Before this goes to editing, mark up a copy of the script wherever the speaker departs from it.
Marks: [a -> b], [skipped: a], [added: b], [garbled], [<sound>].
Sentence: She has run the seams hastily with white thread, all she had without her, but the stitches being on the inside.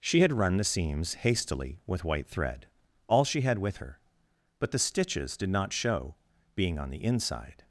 She [has -> had] run the seams hastily with white thread, all she had [without -> with] her, but the stitches [added: did not show] being on the inside.